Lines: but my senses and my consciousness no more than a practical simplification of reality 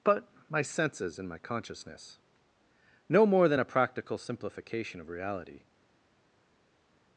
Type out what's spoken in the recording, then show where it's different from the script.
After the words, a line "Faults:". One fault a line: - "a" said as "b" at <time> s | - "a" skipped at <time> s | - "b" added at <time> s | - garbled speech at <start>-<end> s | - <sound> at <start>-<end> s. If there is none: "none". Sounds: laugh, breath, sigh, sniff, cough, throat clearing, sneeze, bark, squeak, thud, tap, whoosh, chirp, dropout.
but my senses and my consciousness no more than a practical simplification of reality
Faults:
none